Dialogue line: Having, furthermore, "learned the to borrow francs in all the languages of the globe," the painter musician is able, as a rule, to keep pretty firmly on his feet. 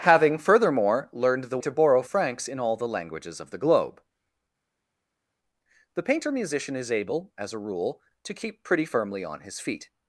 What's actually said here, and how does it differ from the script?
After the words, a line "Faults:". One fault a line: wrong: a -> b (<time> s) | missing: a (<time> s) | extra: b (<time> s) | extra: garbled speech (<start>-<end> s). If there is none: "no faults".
Having, furthermore, "learned the to borrow francs in all the languages of the globe," the painter musician is able, as a rule, to keep pretty firmly on his feet.
Faults:
no faults